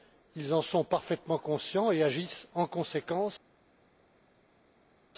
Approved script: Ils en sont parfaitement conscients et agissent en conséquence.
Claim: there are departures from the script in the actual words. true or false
false